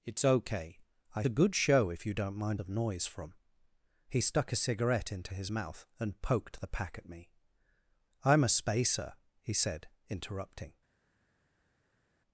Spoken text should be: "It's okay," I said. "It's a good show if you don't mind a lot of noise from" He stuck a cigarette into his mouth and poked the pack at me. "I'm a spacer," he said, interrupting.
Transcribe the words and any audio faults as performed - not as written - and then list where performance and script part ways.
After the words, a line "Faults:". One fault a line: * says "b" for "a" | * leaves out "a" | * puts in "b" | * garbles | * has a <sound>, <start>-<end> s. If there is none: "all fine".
"It's okay," I a good show if you don't mind of noise from" He stuck a cigarette into his mouth and poked the pack at me. "I'm a spacer," he said, interrupting.
Faults:
* leaves out "said It's"
* leaves out "a lot"